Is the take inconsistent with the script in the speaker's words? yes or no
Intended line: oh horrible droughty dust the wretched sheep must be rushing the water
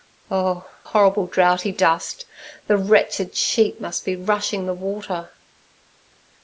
no